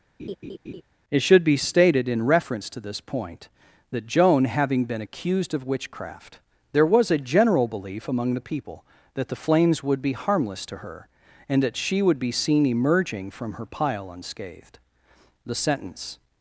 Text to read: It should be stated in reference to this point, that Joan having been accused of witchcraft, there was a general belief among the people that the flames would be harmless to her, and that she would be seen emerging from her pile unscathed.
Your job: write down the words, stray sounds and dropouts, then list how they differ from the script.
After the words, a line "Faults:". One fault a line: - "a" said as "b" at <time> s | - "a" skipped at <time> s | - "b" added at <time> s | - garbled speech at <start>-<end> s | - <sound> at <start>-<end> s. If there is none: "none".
It should be stated in reference to this point, that Joan having been accused of witchcraft, there was a general belief among the people that the flames would be harmless to her, and that she would be seen emerging from her pile unscathed. The sentence
Faults:
- laugh at 0.2-0.8 s
- "The sentence" added at 15.4 s